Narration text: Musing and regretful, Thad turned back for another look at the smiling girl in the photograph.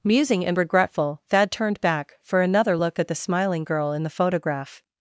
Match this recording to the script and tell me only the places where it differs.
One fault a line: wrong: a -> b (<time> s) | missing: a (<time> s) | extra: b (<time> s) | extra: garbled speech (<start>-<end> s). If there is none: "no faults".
no faults